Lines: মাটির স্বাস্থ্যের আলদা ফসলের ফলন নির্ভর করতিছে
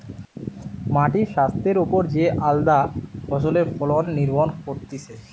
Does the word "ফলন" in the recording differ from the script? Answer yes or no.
no